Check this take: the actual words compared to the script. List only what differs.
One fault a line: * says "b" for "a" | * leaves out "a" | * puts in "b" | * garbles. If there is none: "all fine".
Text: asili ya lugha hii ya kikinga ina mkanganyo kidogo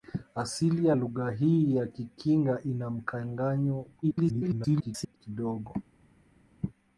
* garbles